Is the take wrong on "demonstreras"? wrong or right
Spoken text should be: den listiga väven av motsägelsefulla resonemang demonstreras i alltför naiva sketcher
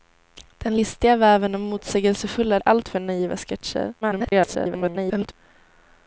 wrong